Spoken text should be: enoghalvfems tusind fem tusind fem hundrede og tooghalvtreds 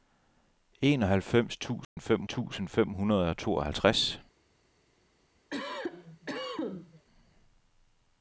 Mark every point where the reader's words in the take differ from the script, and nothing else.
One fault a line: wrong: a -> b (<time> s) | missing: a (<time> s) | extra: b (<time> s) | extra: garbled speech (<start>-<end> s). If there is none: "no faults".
no faults